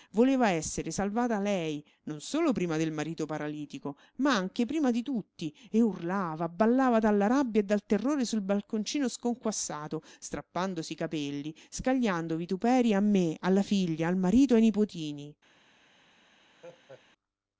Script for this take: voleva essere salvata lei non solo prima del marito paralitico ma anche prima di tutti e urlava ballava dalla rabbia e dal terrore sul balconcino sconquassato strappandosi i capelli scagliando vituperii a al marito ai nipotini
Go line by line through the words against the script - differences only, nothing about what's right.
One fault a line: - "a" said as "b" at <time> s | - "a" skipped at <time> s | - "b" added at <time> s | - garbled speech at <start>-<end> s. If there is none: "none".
- "me alla figlia" added at 13.0 s